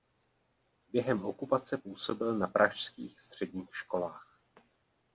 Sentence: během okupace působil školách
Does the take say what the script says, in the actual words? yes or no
no